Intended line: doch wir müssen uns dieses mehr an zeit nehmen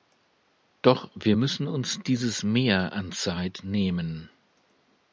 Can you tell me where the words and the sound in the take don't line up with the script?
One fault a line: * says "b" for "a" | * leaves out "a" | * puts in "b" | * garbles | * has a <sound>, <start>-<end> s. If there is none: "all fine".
all fine